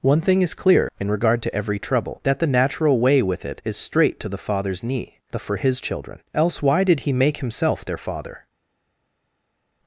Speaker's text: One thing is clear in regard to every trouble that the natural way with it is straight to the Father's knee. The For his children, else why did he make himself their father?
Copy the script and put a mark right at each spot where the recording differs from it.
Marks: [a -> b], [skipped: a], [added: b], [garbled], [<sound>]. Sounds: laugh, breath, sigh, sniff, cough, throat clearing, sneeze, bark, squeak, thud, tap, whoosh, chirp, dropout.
One thing is clear in regard to every trouble that the natural way with it is straight to the Father's knee. The For his children, else why did he make himself their father?